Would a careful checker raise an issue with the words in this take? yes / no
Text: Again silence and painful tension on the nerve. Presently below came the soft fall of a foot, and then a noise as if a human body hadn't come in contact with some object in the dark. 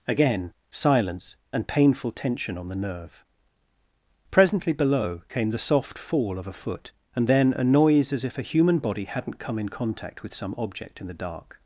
no